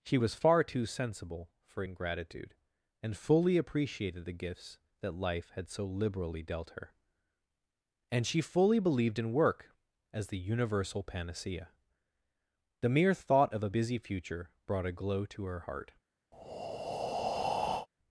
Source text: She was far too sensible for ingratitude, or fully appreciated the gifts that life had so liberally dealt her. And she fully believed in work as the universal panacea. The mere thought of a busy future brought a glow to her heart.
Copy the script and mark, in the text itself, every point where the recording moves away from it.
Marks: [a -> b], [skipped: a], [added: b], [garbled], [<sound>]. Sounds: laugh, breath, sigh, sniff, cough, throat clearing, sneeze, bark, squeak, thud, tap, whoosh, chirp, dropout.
She was far too sensible for ingratitude, [or -> and] fully appreciated the gifts that life had so liberally dealt her. And she fully believed in work as the universal panacea. The mere thought of a busy future brought a glow to her heart. [breath]